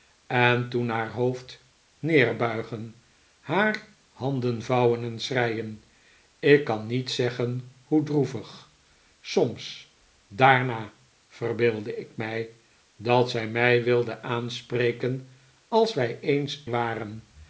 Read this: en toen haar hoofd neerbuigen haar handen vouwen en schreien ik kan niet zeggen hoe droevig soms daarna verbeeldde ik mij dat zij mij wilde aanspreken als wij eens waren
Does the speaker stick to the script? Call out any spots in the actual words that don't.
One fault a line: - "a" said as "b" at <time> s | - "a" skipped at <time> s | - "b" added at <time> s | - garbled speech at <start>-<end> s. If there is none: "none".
none